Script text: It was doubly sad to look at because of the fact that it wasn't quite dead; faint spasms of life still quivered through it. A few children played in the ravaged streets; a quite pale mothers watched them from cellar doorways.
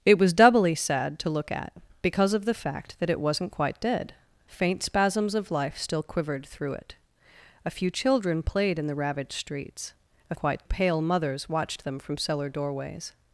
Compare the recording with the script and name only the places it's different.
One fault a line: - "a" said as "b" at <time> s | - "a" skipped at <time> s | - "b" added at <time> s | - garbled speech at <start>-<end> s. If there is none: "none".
none